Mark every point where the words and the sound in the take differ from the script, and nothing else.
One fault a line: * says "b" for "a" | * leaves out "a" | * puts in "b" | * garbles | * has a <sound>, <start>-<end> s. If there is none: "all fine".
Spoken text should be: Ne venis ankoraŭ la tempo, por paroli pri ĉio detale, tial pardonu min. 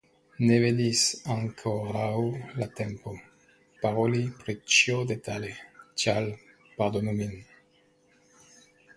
* leaves out "por"